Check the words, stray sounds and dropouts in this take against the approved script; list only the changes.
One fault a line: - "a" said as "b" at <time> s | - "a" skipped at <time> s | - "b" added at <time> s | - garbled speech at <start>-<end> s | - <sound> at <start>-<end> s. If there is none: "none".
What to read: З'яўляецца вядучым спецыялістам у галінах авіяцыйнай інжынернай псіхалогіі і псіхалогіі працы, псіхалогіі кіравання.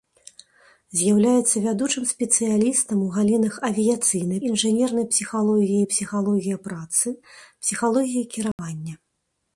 - dropout at 8.5-8.6 s